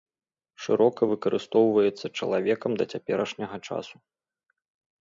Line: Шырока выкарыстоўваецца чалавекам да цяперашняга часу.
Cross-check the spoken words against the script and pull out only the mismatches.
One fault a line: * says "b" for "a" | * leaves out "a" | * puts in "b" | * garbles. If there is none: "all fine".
all fine